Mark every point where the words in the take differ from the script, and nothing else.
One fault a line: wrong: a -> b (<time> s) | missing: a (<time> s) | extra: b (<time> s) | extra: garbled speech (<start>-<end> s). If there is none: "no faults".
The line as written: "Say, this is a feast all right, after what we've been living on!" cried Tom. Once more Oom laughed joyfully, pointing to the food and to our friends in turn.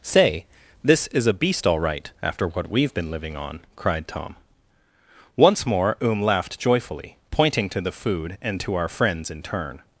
wrong: feast -> beast (1.3 s)